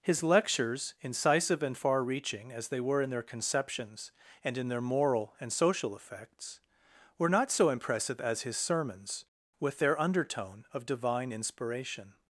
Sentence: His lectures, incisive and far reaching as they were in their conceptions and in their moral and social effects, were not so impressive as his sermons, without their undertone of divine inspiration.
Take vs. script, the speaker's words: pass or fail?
fail